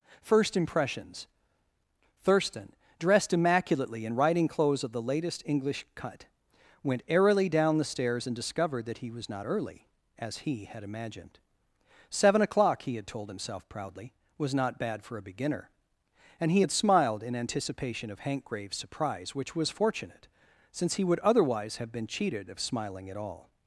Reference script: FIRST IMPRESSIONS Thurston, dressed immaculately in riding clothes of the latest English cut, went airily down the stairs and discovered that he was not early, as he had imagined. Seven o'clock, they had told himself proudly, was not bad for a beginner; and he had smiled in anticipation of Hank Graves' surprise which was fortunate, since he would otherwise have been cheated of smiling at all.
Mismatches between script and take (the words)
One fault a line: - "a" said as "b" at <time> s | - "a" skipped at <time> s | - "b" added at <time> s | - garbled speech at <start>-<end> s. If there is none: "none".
- "they" said as "he" at 12.8 s